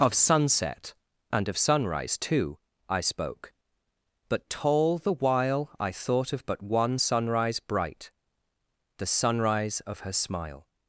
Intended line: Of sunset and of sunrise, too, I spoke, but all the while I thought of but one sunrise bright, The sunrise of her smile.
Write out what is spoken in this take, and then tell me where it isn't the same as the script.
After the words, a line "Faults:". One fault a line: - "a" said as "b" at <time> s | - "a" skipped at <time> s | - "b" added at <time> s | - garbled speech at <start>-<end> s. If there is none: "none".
Of sunset and of sunrise, too, I spoke, but tall the while I thought of but one sunrise bright, The sunrise of her smile.
Faults:
- "all" said as "tall" at 4.5 s